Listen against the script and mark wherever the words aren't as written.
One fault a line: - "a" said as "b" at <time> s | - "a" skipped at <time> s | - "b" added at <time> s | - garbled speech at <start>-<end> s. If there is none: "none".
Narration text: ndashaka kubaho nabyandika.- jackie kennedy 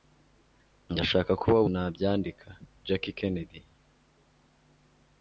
none